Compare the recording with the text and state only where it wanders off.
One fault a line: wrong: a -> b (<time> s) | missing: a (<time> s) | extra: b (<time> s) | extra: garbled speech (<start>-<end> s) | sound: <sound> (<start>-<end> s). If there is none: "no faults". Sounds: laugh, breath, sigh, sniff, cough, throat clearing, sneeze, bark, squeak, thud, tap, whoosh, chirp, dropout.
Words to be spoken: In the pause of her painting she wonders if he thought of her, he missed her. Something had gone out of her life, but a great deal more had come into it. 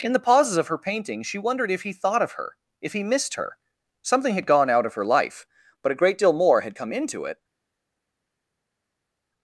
wrong: pause -> pauses (0.2 s)
wrong: wonders -> wondered (1.4 s)
extra: if (2.8 s)